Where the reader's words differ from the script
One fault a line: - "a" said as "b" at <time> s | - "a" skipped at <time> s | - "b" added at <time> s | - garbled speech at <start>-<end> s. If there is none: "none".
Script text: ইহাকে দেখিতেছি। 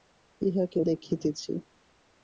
none